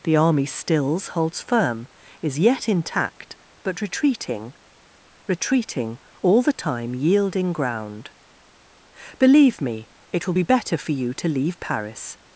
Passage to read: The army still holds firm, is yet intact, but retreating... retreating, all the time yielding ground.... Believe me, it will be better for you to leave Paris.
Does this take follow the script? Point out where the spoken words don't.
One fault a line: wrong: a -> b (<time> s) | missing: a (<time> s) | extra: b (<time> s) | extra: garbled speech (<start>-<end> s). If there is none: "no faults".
wrong: still -> stills (0.5 s)